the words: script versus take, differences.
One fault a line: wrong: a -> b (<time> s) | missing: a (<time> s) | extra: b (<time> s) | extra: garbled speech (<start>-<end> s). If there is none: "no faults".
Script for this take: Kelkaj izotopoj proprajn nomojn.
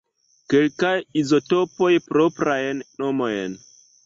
no faults